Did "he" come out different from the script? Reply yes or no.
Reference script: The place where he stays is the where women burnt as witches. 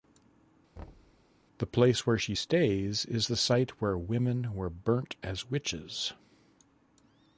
yes